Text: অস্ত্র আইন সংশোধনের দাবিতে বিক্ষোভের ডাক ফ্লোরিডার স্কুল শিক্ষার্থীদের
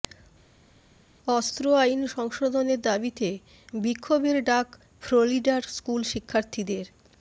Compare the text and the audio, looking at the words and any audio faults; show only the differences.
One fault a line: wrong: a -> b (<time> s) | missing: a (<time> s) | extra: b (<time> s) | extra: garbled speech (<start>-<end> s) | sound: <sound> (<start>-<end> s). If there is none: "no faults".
no faults